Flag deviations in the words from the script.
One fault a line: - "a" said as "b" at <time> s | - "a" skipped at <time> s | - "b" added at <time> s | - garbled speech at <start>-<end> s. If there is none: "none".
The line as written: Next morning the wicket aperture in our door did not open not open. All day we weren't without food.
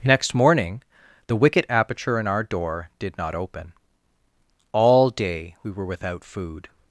- "not open" skipped at 3.7 s
- "weren't" said as "were" at 5.7 s